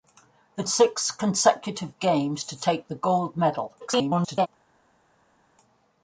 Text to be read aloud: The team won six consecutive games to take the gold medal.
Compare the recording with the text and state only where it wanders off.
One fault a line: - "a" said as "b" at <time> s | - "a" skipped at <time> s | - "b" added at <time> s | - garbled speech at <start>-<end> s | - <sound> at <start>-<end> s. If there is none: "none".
- "team won" skipped at 0.6 s
- garbled speech at 3.8-4.5 s